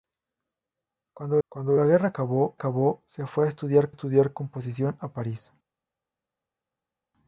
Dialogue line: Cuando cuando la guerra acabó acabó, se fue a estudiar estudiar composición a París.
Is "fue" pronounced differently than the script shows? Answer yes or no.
no